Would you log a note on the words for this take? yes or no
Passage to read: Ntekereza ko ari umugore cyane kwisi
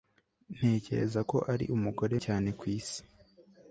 no